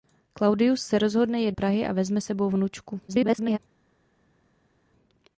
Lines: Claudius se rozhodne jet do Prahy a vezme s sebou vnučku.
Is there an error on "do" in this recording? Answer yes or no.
yes